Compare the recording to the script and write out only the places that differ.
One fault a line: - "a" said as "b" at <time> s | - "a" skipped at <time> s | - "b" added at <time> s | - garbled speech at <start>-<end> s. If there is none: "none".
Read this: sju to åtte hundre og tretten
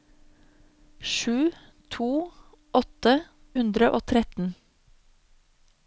none